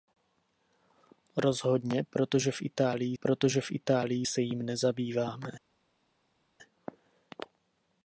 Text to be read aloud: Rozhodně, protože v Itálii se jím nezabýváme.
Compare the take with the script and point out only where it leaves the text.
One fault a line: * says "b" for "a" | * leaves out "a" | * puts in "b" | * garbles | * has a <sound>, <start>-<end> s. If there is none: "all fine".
* puts in "protože v Itálii"